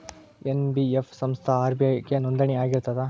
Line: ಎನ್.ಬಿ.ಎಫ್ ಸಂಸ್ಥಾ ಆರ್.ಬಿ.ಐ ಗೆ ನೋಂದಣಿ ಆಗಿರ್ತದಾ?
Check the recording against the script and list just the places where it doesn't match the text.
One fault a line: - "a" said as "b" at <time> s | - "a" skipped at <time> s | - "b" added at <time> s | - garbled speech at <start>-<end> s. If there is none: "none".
none